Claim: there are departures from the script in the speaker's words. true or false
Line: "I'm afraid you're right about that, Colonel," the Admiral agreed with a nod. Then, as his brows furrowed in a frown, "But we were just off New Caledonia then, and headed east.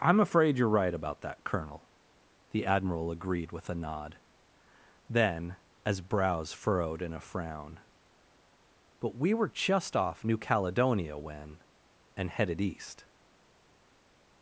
true